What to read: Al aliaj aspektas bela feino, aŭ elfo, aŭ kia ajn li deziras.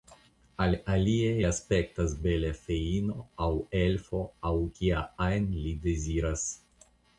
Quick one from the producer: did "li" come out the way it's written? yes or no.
yes